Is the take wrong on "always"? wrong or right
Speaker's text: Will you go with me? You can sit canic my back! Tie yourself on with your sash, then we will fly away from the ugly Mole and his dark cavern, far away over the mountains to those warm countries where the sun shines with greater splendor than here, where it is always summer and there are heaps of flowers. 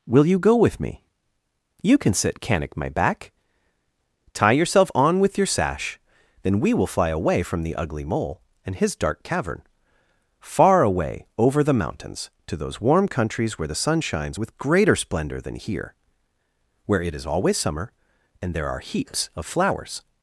right